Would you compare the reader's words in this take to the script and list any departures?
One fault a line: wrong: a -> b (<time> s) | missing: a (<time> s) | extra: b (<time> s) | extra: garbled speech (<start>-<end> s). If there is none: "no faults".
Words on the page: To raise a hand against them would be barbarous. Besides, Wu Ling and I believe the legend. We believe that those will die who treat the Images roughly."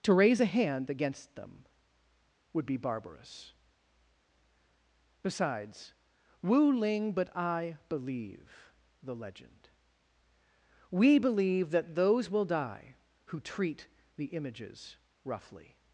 wrong: and -> but (7.1 s)